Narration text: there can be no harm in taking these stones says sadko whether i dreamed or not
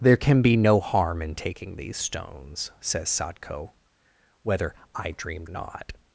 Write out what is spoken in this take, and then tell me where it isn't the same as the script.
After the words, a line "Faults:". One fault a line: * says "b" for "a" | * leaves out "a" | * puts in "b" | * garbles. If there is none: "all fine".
there can be no harm in taking these stones says sadko whether i dreamed not
Faults:
* leaves out "or"